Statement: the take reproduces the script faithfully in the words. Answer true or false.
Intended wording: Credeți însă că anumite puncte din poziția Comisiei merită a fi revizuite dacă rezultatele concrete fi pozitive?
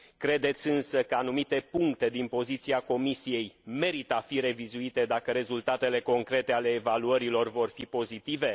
false